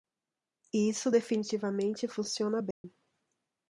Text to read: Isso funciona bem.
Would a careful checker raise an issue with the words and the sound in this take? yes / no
yes